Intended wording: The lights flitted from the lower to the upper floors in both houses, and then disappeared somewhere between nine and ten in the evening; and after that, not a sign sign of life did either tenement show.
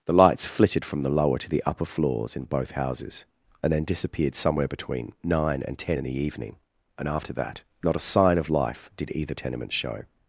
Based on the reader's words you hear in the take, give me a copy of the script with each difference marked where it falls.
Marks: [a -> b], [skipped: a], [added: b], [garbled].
The lights flitted from the lower to the upper floors in both houses, and then disappeared somewhere between nine and ten in the evening; and after that, not a sign [skipped: sign] of life did either tenement show.